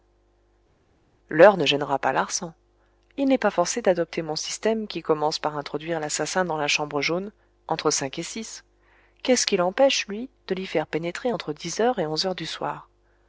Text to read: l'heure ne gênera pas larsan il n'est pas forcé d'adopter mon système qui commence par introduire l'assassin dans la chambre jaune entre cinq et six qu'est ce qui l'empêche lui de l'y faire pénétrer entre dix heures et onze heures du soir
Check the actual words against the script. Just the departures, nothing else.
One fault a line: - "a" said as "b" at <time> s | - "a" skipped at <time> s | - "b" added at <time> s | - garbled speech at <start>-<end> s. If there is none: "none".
none